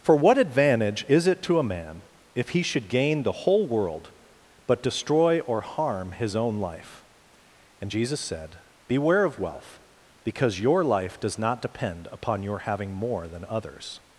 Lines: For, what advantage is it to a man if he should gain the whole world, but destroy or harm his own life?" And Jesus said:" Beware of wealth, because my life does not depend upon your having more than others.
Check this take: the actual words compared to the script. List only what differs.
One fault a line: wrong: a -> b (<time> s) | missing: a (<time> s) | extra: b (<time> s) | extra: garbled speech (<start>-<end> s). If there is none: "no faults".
wrong: my -> your (10.6 s)